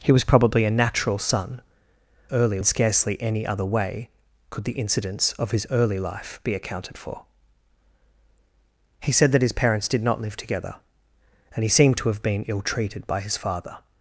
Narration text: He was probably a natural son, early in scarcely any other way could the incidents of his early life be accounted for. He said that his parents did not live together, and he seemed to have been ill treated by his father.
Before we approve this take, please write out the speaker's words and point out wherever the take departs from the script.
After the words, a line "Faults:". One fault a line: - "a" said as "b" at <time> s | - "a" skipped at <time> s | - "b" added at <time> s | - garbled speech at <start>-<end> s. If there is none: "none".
He was probably a natural son, early in scarcely any other way could the incidents of his early life be accounted for. He said that his parents did not live together, and he seemed to have been ill treated by his father.
Faults:
none